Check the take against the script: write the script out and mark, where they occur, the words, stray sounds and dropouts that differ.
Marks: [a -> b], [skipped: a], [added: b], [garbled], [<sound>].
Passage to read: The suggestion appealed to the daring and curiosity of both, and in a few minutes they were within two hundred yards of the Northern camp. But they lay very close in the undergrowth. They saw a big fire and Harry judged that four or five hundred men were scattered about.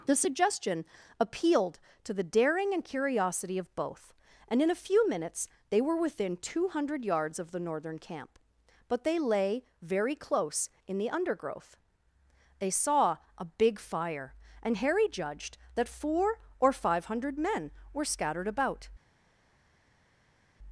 The suggestion appealed to the daring and curiosity of both, and in a few minutes they were within two hundred yards of the Northern camp. But they lay very close in the undergrowth. They saw a big fire and Harry judged that four or five hundred men were scattered about.